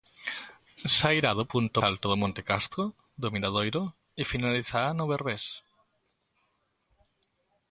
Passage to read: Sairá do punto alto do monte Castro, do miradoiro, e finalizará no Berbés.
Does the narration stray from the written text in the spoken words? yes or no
no